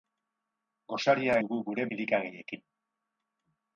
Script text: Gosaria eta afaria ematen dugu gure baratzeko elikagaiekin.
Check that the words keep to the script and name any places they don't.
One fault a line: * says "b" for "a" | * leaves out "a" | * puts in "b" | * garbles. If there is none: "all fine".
* leaves out "eta afaria ematen"
* leaves out "baratzeko"